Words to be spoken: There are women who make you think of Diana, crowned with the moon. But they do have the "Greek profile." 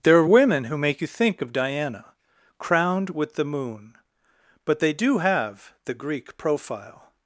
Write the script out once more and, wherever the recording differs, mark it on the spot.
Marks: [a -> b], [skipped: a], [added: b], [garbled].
There are women who make you think of Diana, crowned with the moon. But they do have the "Greek profile."